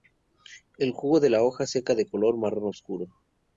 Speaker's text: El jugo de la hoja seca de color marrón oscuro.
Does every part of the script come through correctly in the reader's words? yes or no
yes